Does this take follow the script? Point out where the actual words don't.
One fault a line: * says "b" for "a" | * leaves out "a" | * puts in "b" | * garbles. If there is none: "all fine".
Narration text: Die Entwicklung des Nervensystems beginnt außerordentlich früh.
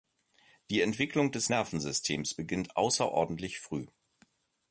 all fine